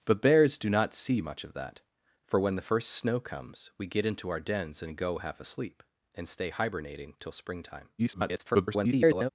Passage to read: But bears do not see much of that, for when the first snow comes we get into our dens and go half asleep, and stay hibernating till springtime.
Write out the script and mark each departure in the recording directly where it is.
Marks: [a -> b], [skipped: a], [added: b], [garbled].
But bears do not see much of that, for when the first snow comes we get into our dens and go half asleep, and stay hibernating till springtime. [garbled]